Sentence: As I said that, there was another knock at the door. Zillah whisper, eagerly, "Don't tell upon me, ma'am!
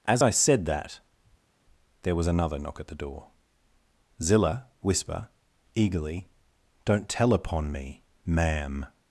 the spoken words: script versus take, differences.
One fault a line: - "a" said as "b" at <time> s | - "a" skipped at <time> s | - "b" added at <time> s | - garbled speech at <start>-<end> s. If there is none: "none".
none